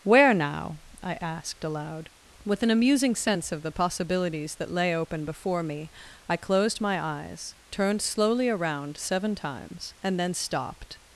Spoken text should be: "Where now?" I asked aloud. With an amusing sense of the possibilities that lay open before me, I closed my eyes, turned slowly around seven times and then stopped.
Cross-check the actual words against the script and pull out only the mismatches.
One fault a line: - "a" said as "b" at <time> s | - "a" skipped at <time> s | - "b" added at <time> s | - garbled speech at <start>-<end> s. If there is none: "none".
none